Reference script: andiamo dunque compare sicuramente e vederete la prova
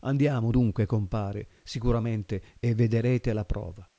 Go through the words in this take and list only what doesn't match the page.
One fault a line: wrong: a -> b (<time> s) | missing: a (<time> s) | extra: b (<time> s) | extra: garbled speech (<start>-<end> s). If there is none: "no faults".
no faults